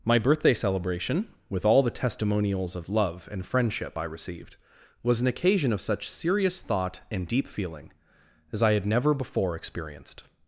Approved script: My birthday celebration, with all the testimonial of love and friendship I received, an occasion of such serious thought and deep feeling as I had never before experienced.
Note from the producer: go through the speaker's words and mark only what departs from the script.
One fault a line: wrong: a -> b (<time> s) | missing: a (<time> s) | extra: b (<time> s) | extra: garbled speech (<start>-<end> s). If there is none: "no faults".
wrong: testimonial -> testimonials (1.9 s)
extra: was (5.0 s)